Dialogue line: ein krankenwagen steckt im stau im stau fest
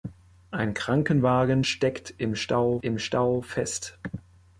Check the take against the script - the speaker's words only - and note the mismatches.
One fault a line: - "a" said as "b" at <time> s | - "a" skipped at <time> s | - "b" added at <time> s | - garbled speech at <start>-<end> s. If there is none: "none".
none